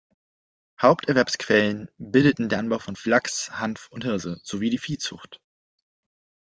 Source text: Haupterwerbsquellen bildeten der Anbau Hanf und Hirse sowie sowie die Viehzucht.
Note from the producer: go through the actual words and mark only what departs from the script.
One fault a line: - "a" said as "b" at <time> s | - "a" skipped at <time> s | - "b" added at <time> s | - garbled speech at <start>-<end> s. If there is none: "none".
- "von Flachs" added at 2.8 s
- "sowie" skipped at 4.7 s